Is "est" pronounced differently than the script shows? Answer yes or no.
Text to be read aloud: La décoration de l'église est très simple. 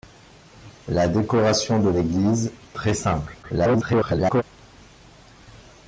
yes